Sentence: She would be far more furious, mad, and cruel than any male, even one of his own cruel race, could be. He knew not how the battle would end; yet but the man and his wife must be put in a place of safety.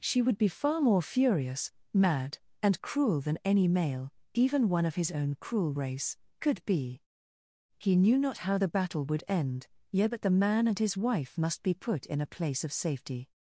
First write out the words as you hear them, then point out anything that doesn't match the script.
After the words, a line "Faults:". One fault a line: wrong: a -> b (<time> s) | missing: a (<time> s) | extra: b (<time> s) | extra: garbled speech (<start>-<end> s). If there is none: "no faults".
She would be far more furious, mad, and cruel than any male, even one of his own cruel race, could be. He knew not how the battle would end; yet but the man and his wife must be put in a place of safety.
Faults:
no faults